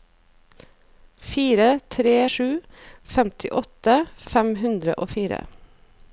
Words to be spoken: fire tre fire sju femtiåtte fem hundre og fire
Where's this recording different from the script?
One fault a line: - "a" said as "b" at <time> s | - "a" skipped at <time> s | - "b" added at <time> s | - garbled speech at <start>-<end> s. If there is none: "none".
- "fire" skipped at 2.1 s